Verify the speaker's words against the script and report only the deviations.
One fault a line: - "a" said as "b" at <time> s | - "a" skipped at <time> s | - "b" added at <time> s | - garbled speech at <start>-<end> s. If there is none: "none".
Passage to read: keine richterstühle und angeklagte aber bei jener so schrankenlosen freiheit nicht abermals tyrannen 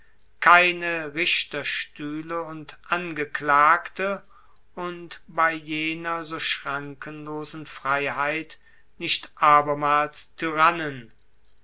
- "aber" said as "und" at 4.7 s